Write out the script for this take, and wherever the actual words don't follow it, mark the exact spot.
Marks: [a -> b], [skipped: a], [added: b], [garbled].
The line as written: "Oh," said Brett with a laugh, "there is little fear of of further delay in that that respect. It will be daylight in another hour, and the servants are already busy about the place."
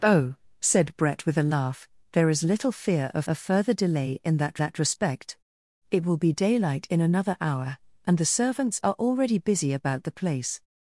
"Oh," said Brett with a laugh, "there is little fear of of further delay in that that respect. It will be daylight in another hour, and the servants are already busy about the place."